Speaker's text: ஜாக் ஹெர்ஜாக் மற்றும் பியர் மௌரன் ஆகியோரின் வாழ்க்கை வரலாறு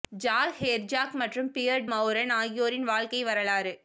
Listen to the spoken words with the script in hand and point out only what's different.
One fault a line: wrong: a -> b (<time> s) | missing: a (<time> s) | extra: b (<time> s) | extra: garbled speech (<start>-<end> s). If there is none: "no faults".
no faults